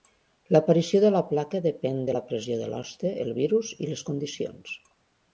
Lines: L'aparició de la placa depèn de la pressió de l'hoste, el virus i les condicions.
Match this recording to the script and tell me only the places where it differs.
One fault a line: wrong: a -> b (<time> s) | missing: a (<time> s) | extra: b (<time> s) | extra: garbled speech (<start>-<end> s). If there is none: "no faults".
no faults